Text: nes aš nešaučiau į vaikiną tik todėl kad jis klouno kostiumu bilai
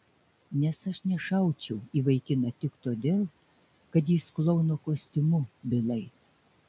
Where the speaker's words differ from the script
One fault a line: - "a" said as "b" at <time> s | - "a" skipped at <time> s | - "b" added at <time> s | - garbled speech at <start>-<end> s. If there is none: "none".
none